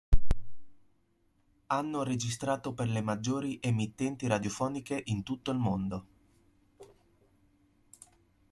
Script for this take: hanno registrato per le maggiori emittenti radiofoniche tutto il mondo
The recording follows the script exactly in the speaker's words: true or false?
false